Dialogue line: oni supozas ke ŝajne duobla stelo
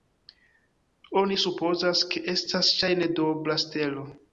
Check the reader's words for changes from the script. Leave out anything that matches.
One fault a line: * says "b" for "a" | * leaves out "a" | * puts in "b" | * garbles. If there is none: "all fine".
* puts in "estas"